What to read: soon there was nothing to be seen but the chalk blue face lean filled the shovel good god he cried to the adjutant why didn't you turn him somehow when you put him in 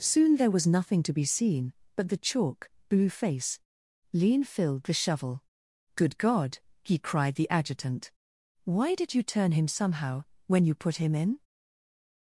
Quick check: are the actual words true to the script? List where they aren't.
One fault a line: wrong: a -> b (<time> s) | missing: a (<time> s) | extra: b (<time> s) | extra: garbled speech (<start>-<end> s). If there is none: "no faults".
missing: to (7.3 s)
wrong: didn't -> did (8.9 s)